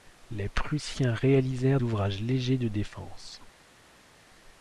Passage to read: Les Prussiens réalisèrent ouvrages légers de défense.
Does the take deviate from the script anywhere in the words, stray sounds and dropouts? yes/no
no